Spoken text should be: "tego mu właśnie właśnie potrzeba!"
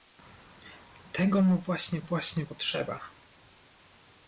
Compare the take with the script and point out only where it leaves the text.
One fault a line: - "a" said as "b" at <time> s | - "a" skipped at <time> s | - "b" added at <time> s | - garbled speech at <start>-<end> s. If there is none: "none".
none